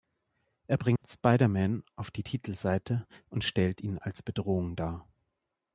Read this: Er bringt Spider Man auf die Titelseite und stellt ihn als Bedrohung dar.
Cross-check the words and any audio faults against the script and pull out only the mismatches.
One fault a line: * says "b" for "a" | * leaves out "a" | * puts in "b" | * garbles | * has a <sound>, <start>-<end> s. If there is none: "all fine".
* has a dropout, 1.0-1.0 s